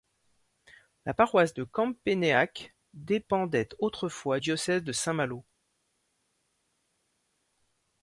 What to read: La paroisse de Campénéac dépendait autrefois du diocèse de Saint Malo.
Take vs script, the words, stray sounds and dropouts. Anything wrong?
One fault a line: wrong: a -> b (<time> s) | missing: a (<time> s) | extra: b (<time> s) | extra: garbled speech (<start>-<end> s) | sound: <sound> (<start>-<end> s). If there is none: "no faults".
missing: du (4.4 s)